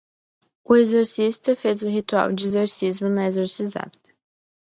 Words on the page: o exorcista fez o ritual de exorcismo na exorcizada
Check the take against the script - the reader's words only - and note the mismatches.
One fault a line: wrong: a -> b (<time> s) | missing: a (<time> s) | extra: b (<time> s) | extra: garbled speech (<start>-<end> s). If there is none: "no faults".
no faults